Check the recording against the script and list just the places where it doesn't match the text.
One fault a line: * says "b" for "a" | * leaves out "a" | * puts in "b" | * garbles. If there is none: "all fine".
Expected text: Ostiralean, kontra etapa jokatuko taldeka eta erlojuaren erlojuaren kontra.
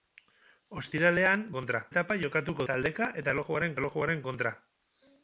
all fine